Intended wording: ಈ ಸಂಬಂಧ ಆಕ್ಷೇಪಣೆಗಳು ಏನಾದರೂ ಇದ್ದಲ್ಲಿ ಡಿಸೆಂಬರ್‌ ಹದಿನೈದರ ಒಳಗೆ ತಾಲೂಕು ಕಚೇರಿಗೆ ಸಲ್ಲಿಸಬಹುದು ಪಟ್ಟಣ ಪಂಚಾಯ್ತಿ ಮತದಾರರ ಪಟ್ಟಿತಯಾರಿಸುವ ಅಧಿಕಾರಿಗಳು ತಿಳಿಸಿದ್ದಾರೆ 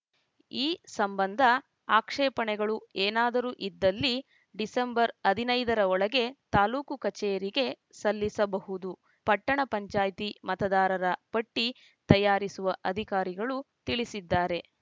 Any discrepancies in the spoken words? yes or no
no